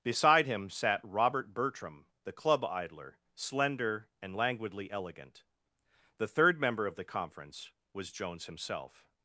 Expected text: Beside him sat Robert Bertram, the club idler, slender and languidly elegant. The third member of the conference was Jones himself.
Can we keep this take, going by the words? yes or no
yes